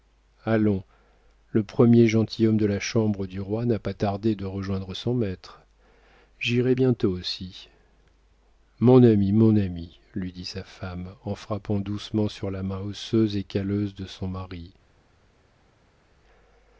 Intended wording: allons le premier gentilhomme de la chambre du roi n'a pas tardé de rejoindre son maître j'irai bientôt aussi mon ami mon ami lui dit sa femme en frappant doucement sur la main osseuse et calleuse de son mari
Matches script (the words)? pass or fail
pass